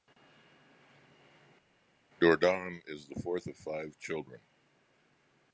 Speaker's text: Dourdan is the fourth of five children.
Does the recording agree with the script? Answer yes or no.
yes